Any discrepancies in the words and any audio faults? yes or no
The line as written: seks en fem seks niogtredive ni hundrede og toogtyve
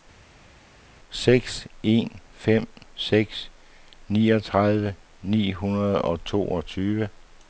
no